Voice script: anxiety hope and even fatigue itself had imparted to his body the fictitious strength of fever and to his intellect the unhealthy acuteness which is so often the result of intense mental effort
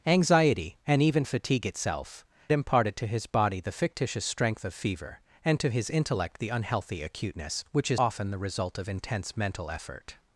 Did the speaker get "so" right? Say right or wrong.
wrong